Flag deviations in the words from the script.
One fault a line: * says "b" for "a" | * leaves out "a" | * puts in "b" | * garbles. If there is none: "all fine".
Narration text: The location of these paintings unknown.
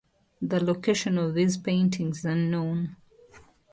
all fine